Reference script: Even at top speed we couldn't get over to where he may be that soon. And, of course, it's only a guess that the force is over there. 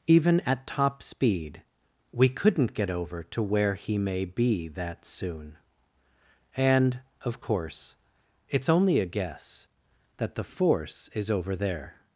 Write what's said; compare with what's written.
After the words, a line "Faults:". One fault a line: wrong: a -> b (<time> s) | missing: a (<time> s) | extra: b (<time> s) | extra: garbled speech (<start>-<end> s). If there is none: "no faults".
Even at top speed we couldn't get over to where he may be that soon. And, of course, it's only a guess that the force is over there.
Faults:
no faults